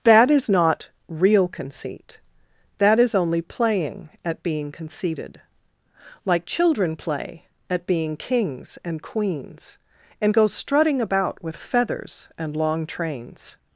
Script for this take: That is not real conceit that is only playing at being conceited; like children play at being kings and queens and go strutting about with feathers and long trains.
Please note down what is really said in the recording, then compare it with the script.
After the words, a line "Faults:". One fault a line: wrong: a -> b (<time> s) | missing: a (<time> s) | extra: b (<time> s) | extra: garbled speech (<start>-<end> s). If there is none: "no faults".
That is not real conceit that is only playing at being conceited; like children play at being kings and queens and go strutting about with feathers and long trains.
Faults:
no faults